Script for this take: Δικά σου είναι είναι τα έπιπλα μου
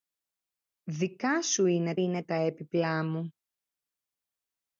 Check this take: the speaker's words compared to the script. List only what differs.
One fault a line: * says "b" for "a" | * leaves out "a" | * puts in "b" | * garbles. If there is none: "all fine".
all fine